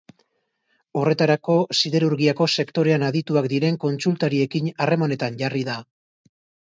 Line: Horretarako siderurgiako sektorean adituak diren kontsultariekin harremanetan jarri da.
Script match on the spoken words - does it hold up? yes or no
yes